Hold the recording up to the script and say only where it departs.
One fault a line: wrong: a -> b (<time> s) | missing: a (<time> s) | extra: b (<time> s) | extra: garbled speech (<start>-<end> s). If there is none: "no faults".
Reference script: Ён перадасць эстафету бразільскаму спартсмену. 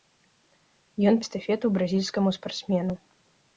missing: перадасць (1.2 s)